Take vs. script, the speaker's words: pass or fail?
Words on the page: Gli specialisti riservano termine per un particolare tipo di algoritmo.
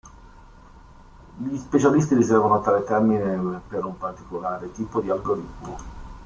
fail